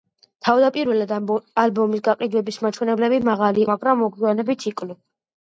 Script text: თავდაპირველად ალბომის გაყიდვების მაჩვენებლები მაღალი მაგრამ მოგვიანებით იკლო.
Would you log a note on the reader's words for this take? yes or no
no